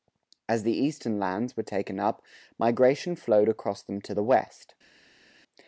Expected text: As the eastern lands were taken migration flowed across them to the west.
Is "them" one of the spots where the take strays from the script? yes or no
no